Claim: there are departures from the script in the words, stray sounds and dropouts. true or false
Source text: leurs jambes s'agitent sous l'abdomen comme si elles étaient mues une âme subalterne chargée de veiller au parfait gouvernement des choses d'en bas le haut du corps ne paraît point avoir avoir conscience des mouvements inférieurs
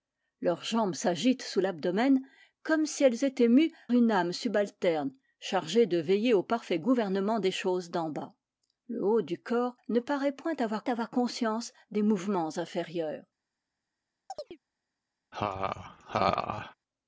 true